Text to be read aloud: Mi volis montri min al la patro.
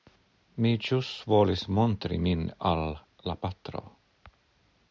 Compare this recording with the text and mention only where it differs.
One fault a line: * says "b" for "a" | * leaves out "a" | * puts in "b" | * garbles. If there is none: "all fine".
* puts in "ĵus"